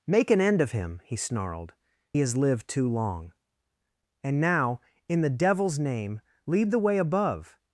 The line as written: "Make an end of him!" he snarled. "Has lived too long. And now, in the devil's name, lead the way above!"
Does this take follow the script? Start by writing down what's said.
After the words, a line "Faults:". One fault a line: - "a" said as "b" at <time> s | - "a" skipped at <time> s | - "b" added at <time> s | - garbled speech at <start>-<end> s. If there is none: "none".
"Make an end of him!" he snarled. "Has lived too long. And now, in the devil's name, lead the way above!"
Faults:
none